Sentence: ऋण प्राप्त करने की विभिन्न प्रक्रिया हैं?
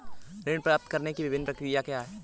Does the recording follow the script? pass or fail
fail